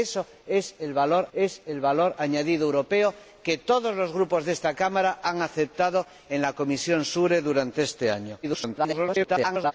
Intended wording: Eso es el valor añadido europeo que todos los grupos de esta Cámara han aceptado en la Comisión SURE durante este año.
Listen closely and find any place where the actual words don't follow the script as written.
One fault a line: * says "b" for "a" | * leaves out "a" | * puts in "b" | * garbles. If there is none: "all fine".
* puts in "es el valor"
* garbles